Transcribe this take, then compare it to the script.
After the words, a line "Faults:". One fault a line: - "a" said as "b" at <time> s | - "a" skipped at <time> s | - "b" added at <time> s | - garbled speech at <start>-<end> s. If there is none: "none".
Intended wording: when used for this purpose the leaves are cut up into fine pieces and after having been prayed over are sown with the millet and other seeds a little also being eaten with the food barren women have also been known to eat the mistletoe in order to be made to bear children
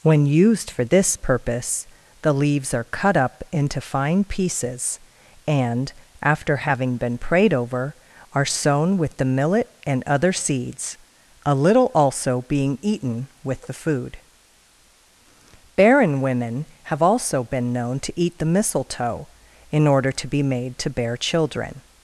when used for this purpose the leaves are cut up into fine pieces and after having been prayed over are sown with the millet and other seeds a little also being eaten with the food barren women have also been known to eat the mistletoe in order to be made to bear children
Faults:
none